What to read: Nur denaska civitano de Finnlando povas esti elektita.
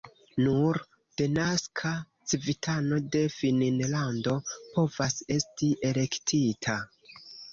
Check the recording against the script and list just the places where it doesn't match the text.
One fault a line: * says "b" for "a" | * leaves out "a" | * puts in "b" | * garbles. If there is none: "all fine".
all fine